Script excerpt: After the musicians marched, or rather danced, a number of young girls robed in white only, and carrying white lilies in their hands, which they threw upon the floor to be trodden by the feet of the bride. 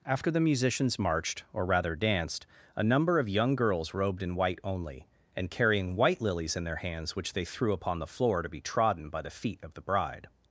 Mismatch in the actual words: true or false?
false